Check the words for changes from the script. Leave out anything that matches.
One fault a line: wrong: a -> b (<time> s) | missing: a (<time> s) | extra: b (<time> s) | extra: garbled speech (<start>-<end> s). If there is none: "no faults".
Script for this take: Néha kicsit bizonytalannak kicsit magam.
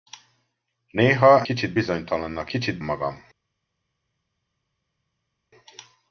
no faults